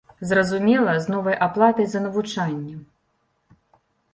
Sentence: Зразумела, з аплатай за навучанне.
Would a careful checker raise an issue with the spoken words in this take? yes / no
yes